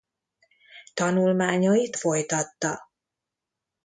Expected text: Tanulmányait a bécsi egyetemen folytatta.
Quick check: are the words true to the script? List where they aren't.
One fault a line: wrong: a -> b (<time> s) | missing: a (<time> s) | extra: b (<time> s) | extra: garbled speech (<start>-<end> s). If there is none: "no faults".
missing: a bécsi egyetemen (2.0 s)